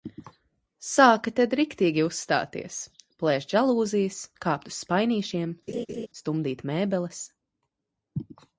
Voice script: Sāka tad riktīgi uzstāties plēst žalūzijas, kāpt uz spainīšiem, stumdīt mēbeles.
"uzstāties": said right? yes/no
yes